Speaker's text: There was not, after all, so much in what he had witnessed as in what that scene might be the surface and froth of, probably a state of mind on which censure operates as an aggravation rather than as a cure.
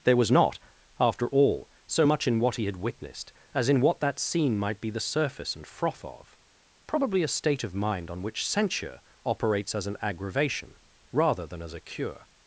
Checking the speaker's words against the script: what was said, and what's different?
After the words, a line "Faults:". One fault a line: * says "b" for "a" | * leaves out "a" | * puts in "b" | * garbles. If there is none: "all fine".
There was not, after all, so much in what he had witnessed as in what that scene might be the surface and froth of, probably a state of mind on which censure operates as an aggravation rather than as a cure.
Faults:
all fine